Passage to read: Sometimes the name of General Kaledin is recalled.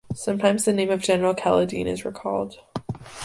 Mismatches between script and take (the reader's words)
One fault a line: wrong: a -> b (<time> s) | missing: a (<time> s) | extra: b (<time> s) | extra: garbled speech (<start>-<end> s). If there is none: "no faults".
no faults